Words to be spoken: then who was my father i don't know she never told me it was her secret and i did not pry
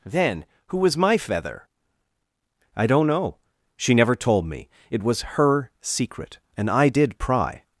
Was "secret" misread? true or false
false